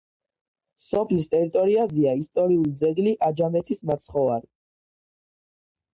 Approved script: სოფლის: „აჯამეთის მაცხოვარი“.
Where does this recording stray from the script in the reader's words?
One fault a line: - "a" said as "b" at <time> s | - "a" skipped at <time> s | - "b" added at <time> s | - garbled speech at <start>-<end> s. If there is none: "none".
- "ტერიტორიაზეა ისტორიული ძეგლი" added at 1.3 s